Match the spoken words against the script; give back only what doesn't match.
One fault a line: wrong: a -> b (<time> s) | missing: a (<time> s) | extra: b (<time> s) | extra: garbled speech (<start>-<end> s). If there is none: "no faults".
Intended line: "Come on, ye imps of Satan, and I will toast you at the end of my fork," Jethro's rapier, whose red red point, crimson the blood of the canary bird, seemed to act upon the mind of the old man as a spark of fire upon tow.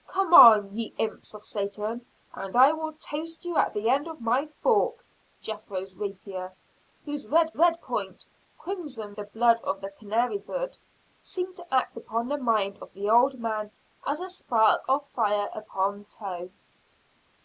no faults